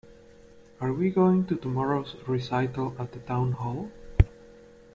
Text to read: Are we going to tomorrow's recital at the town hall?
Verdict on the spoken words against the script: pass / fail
pass